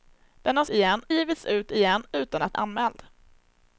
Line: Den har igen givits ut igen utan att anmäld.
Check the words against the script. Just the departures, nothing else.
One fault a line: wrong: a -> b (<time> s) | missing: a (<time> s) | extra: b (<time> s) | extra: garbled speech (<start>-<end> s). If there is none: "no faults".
no faults